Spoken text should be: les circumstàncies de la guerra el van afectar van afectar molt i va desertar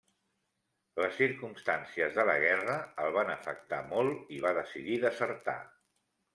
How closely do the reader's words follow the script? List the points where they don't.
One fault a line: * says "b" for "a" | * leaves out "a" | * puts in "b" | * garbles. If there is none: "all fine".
* leaves out "van afectar"
* puts in "decidir"